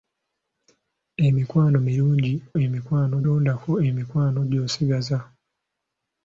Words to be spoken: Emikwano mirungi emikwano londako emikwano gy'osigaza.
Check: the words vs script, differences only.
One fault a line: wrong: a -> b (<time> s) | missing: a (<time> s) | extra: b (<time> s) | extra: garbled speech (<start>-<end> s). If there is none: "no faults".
no faults